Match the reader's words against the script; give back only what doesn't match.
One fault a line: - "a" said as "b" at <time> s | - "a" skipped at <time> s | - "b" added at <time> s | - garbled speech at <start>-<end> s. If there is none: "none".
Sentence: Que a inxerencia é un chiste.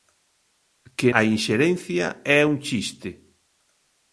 none